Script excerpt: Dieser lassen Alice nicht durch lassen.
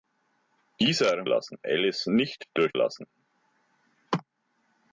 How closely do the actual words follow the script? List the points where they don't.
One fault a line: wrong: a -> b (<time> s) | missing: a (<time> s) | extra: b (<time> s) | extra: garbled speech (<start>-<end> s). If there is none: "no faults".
no faults